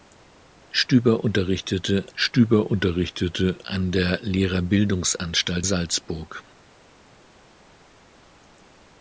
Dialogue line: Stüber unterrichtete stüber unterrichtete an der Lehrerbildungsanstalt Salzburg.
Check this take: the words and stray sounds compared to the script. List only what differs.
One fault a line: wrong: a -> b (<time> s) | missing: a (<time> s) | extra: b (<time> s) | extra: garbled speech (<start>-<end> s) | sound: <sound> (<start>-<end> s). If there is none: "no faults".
no faults